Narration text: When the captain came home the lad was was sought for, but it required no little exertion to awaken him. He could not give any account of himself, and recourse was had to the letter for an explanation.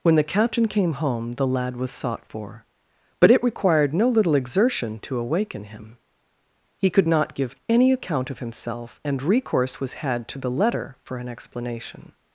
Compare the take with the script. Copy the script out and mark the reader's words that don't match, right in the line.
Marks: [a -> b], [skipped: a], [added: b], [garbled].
When the captain came home the lad was [skipped: was] sought for, but it required no little exertion to awaken him. He could not give any account of himself, and recourse was had to the letter for an explanation.